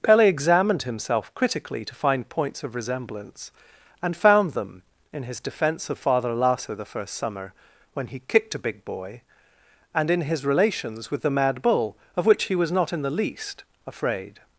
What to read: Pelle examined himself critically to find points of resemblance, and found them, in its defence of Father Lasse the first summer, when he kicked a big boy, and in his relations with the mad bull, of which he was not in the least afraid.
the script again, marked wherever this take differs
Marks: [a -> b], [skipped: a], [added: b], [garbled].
Pelle examined himself critically to find points of resemblance, and found them, in [its -> his] defence of Father Lasse the first summer, when he kicked a big boy, and in his relations with the mad bull, of which he was not in the least afraid.